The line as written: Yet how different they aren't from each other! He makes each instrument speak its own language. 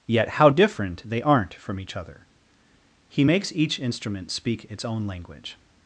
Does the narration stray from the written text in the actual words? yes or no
no